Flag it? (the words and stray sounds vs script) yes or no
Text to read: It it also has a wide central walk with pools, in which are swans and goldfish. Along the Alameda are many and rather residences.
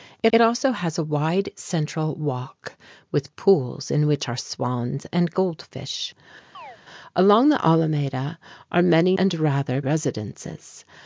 yes